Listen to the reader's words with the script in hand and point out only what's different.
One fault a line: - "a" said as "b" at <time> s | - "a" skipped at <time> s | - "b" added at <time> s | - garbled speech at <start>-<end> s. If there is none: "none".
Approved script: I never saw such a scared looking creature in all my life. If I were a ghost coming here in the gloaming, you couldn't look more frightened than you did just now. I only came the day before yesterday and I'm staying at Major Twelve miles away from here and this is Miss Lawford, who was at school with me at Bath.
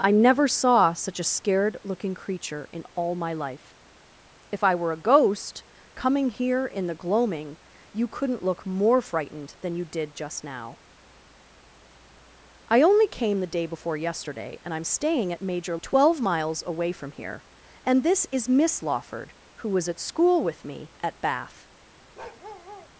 none